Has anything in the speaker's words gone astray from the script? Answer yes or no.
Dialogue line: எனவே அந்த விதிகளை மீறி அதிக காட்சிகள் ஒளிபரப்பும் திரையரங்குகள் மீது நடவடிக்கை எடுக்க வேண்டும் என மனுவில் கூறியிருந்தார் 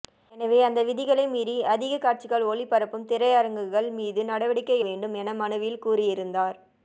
yes